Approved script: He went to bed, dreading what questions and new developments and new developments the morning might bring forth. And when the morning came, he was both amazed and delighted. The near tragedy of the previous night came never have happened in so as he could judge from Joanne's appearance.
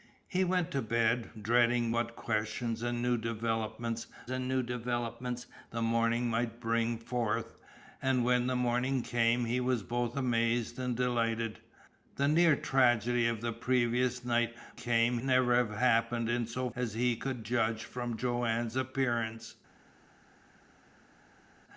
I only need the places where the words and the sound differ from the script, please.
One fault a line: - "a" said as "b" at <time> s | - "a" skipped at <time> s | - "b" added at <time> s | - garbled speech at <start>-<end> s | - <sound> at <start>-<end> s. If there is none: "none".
none